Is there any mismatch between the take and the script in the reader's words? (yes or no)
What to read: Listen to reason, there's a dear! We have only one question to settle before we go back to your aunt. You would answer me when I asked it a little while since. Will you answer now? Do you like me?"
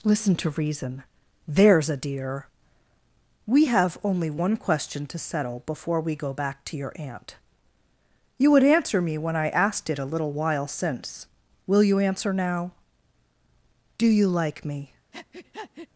no